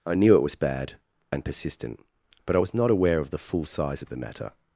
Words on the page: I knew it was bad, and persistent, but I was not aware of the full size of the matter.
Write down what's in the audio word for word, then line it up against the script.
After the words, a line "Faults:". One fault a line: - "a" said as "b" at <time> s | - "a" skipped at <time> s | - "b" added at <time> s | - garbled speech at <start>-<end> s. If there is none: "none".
I knew it was bad, and persistent, but I was not aware of the full size of the matter.
Faults:
none